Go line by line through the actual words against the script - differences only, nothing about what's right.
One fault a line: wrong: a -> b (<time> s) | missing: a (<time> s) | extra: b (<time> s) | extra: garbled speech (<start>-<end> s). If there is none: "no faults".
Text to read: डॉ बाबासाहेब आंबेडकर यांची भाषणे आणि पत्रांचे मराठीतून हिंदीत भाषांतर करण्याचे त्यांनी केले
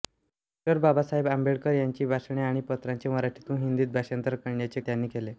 no faults